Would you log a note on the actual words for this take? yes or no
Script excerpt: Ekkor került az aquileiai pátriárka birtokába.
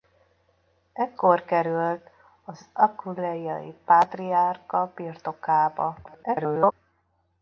yes